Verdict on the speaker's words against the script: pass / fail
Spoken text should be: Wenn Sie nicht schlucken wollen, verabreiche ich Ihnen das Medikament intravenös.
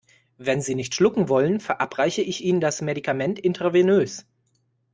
pass